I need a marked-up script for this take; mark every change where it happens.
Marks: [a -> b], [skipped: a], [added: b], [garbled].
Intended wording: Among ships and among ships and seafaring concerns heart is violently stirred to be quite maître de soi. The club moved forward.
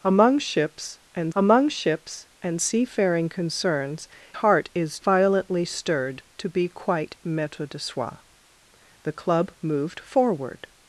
Among ships and among ships and seafaring concerns heart is violently stirred to be quite maître de soi. The club moved forward.